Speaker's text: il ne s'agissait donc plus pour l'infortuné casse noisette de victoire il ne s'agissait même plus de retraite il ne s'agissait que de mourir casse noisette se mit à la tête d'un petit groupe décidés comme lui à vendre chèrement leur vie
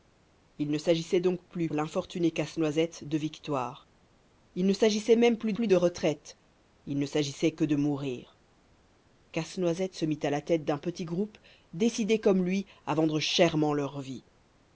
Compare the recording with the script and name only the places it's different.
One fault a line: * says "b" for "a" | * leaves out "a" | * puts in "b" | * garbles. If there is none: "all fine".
* leaves out "pour"
* puts in "plus"